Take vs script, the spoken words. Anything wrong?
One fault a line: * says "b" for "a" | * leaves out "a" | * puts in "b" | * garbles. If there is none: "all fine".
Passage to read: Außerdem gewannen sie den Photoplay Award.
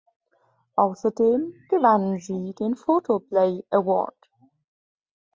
all fine